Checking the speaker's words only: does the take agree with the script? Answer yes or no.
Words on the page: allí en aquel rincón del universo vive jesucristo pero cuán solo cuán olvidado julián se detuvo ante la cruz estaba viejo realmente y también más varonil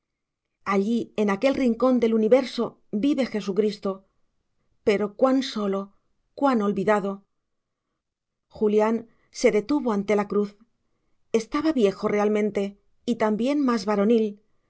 yes